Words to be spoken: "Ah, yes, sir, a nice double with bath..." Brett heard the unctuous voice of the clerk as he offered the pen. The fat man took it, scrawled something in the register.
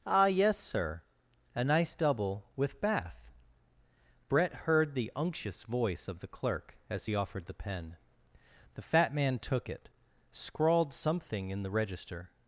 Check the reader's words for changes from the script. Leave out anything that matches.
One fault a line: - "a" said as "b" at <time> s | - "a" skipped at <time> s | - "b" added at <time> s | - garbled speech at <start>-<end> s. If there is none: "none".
none